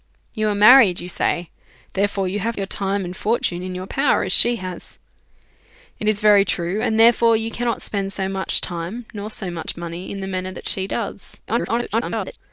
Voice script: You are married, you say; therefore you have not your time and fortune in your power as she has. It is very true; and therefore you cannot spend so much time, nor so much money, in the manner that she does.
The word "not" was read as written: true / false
false